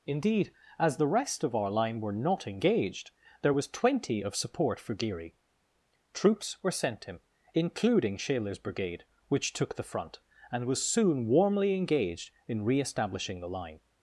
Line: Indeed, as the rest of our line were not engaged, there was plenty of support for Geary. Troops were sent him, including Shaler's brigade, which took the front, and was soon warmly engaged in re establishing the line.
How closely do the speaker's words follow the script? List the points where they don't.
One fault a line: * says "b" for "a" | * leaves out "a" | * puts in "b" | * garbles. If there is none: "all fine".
* says "twenty" for "plenty"